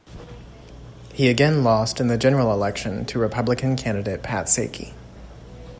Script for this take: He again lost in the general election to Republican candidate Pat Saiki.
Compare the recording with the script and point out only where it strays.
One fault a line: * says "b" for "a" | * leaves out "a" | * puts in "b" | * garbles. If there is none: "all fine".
all fine